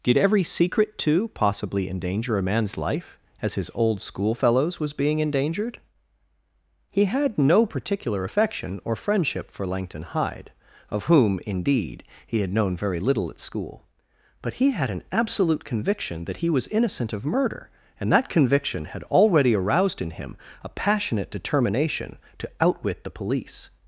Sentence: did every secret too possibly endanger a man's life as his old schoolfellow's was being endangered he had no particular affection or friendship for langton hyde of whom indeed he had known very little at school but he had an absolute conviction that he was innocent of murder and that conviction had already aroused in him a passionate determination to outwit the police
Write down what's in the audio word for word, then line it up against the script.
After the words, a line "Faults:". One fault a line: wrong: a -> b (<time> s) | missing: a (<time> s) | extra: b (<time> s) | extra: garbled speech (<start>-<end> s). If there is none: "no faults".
did every secret too possibly endanger a man's life as his old schoolfellow's was being endangered he had no particular affection or friendship for langton hyde of whom indeed he had known very little at school but he had an absolute conviction that he was innocent of murder and that conviction had already aroused in him a passionate determination to outwit the police
Faults:
no faults